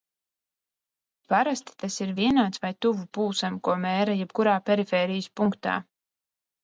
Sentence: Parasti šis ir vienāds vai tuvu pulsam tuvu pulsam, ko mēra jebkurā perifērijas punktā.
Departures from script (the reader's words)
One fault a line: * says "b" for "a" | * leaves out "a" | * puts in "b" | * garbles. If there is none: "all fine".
* says "tas" for "šis"
* leaves out "tuvu pulsam"